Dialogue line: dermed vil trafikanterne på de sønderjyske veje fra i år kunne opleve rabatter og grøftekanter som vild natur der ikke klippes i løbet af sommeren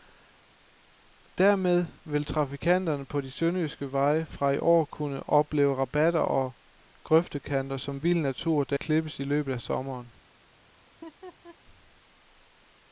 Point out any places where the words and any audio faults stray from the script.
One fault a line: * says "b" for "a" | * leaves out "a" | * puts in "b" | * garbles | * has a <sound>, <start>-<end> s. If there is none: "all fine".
* leaves out "ikke"
* has a laugh, 10.9-11.6 s